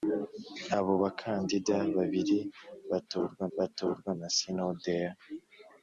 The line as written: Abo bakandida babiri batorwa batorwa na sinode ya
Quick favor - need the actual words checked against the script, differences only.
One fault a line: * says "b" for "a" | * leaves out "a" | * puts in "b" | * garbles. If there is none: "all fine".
all fine